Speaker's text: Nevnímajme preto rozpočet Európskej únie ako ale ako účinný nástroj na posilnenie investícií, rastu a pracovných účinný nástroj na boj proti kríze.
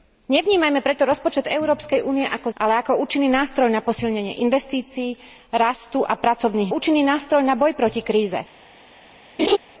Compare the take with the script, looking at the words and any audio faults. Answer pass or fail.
fail